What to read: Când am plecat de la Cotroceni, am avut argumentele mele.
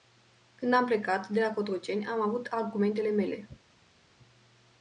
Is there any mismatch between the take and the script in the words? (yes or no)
no